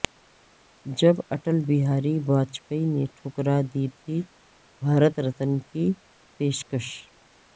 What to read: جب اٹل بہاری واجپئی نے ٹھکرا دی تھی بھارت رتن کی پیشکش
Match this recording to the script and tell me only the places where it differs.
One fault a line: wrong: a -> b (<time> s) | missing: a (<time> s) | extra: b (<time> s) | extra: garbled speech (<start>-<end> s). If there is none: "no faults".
no faults